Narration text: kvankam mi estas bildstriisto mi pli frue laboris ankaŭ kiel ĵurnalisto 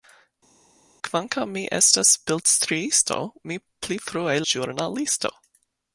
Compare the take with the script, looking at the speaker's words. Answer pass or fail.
fail